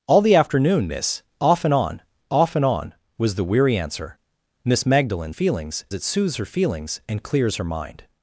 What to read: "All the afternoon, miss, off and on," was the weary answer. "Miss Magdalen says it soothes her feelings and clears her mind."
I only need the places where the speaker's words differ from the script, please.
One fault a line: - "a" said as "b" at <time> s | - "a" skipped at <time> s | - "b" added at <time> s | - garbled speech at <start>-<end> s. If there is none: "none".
- "off and on" added at 2.3 s
- "says" said as "feelings" at 5.3 s